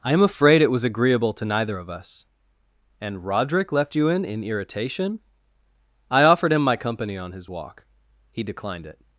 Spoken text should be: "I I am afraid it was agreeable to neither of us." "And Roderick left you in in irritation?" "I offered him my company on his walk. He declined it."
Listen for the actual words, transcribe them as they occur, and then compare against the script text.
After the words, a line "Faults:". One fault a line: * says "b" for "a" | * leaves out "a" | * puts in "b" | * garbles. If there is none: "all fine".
"I am afraid it was agreeable to neither of us." "And Roderick left you in in irritation?" "I offered him my company on his walk. He declined it."
Faults:
* leaves out "I"